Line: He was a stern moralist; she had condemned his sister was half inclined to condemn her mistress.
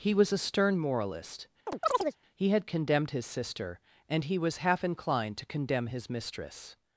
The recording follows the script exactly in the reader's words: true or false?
false